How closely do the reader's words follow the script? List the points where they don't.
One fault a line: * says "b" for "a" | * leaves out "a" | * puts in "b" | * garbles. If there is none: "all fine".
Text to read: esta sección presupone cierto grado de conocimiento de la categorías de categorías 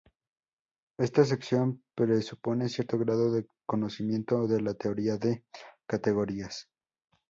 * says "teoría" for "categorías"